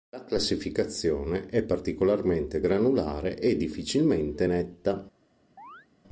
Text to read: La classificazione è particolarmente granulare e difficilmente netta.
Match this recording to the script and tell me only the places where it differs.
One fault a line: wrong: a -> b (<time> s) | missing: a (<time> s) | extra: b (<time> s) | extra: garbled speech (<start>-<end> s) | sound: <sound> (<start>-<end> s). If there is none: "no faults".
sound: chirp (5.6-5.9 s)